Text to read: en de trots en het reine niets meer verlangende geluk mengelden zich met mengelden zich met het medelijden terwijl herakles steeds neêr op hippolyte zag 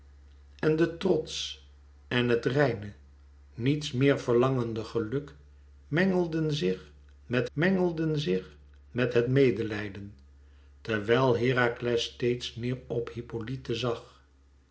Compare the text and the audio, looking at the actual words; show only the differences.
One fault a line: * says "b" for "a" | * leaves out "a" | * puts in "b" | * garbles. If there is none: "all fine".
all fine